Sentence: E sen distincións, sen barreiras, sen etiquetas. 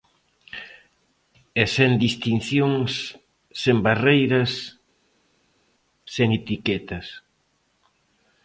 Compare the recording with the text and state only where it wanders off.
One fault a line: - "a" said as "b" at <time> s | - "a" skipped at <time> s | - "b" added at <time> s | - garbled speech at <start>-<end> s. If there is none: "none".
none